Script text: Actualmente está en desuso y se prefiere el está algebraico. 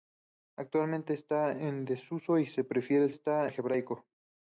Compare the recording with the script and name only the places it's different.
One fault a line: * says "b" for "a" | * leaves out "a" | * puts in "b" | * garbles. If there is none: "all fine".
all fine